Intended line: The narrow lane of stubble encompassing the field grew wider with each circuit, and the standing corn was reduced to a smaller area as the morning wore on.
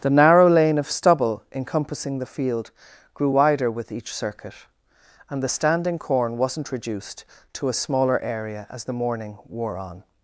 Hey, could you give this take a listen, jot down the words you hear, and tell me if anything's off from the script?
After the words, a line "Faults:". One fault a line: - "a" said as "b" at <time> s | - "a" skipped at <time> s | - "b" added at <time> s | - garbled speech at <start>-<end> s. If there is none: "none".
The narrow lane of stubble encompassing the field grew wider with each circuit, and the standing corn wasn't reduced to a smaller area as the morning wore on.
Faults:
- "was" said as "wasn't" at 6.4 s